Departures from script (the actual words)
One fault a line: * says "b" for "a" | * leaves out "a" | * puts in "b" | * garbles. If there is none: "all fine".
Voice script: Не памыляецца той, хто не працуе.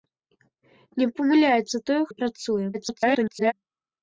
* leaves out "хто"
* garbles